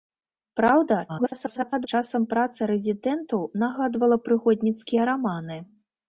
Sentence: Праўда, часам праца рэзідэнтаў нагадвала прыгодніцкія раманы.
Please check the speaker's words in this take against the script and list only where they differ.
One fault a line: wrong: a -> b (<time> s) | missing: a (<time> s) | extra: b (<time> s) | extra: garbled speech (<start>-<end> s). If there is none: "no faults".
extra: garbled speech (1.1-1.9 s)